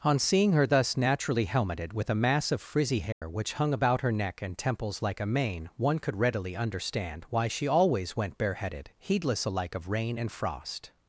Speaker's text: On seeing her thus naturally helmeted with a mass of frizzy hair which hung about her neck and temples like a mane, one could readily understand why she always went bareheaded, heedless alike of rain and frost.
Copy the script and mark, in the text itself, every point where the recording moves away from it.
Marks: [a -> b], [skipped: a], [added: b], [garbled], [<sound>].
On seeing her thus naturally helmeted with a mass of frizzy hair [dropout] which hung about her neck and temples like a mane, one could readily understand why she always went bareheaded, heedless alike of rain and frost.